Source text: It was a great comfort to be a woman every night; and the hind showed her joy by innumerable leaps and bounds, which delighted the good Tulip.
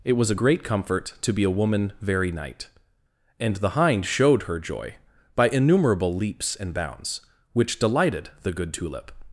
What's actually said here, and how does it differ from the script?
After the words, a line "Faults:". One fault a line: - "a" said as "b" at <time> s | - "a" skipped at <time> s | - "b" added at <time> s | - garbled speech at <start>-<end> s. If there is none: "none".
It was a great comfort to be a woman very night; and the hind showed her joy by innumerable leaps and bounds, which delighted the good Tulip.
Faults:
- "every" said as "very" at 2.0 s